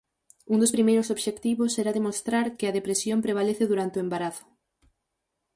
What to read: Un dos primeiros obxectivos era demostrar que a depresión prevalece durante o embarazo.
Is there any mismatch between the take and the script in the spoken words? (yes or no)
no